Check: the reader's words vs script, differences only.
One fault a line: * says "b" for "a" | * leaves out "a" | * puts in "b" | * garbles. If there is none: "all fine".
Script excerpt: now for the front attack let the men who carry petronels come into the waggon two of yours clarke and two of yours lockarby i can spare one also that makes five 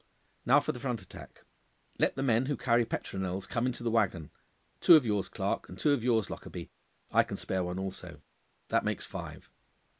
all fine